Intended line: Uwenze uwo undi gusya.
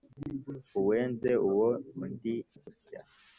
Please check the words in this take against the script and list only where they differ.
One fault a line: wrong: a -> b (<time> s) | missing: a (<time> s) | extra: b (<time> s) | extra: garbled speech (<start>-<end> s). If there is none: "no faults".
no faults